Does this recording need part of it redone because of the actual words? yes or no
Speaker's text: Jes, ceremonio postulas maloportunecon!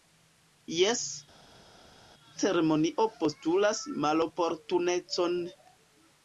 no